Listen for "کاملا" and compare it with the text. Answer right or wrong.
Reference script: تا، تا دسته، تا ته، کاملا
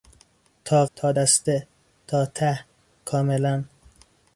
right